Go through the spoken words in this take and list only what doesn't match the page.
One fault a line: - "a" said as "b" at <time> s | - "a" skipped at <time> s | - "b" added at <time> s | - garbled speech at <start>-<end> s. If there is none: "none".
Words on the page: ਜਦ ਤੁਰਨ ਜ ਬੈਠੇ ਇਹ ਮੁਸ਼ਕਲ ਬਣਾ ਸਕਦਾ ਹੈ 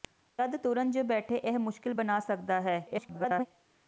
- garbled speech at 2.9-3.5 s